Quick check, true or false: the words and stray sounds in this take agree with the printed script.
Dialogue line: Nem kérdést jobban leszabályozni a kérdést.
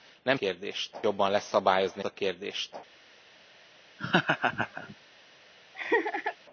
false